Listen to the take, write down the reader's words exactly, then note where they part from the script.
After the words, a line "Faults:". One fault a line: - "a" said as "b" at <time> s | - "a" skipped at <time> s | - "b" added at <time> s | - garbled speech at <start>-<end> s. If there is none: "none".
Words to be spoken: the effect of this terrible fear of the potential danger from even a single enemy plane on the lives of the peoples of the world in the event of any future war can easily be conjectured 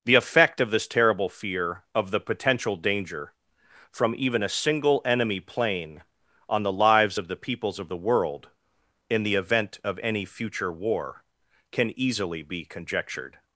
the effect of this terrible fear of the potential danger from even a single enemy plane on the lives of the peoples of the world in the event of any future war can easily be conjectured
Faults:
none